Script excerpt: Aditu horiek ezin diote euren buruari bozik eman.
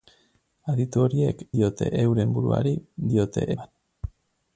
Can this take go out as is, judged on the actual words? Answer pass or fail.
fail